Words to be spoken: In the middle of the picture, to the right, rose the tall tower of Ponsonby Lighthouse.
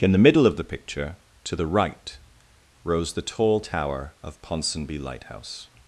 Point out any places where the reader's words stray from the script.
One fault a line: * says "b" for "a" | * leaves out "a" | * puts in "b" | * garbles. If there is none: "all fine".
all fine